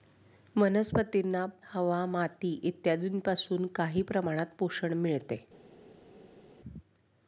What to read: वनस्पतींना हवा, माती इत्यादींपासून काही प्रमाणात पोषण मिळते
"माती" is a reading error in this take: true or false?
false